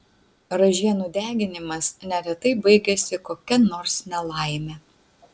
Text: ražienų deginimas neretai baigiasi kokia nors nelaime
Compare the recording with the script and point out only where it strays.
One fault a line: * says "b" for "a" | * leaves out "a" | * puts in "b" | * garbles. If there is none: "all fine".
all fine